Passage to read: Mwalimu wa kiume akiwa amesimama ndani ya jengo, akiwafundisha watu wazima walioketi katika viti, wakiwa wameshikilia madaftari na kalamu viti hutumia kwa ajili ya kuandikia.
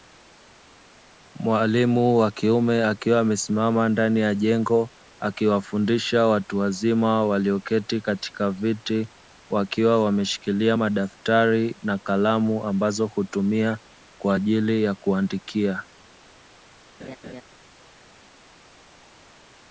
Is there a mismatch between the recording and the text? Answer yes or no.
yes